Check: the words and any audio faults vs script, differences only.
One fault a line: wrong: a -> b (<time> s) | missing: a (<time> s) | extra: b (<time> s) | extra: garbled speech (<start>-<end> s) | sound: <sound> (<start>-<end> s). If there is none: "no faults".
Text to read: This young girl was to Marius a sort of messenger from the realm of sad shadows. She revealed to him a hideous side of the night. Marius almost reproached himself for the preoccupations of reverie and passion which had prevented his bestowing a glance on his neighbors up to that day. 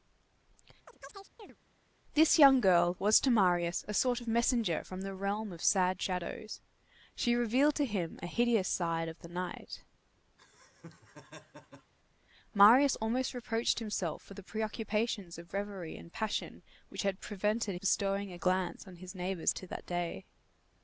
sound: chirp (0.9-1.6 s)
sound: laugh (10.4-11.9 s)
missing: his (17.7 s)
missing: up (19.5 s)